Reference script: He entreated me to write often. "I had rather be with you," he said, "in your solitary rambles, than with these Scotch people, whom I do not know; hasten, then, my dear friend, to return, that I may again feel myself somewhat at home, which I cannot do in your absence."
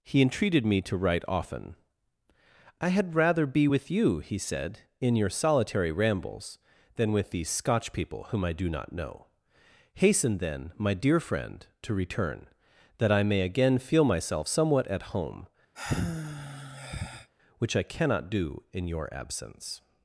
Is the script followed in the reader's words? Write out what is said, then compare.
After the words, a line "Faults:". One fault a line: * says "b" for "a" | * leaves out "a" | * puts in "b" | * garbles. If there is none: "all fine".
He entreated me to write often. "I had rather be with you," he said, "in your solitary rambles, than with these Scotch people, whom I do not know; hasten, then, my dear friend, to return, that I may again feel myself somewhat at home, which I cannot do in your absence."
Faults:
all fine